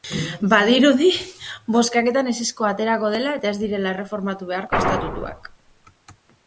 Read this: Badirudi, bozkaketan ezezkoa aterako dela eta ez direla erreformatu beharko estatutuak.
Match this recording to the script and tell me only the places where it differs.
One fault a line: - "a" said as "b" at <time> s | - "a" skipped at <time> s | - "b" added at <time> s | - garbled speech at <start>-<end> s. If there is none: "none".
none